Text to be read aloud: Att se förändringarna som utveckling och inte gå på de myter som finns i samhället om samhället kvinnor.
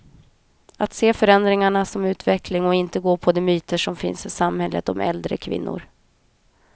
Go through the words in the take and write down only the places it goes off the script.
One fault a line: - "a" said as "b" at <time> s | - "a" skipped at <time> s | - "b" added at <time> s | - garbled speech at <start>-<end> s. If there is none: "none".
- "samhället" said as "äldre" at 5.0 s